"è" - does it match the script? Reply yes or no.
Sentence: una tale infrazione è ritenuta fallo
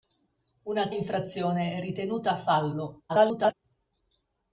yes